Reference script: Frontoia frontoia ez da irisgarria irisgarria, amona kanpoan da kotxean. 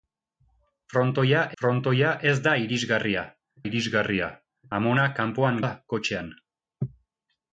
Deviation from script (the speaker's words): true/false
false